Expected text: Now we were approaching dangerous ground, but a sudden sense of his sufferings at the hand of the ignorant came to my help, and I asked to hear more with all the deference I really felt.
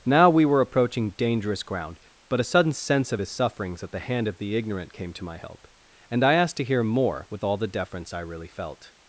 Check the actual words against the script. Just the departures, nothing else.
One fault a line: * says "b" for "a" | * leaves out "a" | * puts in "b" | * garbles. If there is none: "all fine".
all fine